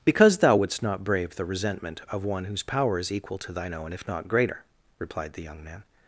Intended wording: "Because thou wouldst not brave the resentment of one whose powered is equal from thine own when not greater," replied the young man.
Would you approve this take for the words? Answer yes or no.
no